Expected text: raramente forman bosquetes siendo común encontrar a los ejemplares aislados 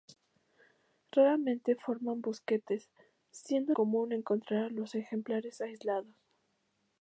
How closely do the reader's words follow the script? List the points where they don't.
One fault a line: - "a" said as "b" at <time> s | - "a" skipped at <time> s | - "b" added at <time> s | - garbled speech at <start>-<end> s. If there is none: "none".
none